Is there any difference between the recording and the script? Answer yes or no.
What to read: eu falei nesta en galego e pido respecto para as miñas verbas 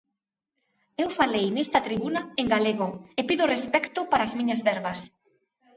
yes